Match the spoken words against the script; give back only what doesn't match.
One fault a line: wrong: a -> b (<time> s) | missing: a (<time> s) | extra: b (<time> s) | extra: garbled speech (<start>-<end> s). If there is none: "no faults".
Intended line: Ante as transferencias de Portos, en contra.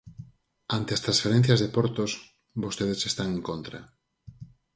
extra: vostedes están (2.6 s)